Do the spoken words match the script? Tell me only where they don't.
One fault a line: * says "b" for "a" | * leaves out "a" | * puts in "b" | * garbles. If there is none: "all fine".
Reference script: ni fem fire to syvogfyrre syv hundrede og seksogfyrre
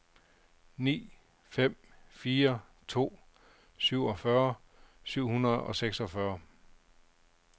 all fine